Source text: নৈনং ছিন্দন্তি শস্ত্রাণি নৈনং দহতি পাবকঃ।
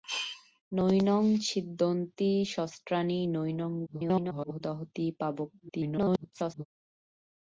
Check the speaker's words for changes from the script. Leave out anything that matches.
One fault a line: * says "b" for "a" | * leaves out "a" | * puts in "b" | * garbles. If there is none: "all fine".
* garbles
* garbles